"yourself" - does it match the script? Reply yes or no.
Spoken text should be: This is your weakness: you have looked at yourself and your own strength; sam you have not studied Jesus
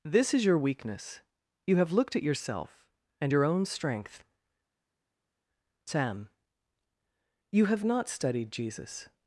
yes